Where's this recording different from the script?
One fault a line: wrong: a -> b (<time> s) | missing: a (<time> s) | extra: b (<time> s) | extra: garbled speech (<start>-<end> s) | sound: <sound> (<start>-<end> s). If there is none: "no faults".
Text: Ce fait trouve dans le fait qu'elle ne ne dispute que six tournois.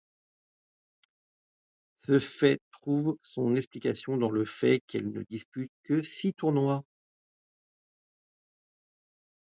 extra: son explication (3.2 s)
missing: ne (5.2 s)